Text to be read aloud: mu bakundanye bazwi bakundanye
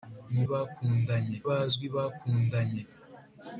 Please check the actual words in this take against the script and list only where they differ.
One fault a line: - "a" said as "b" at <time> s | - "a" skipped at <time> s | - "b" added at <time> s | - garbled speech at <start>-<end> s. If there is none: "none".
none